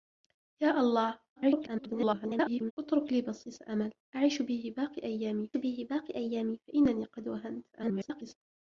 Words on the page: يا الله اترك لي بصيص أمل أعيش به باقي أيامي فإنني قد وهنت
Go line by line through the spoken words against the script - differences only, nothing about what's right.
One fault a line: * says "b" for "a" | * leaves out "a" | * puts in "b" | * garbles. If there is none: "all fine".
* garbles
* puts in "به باقي أيامي"
* garbles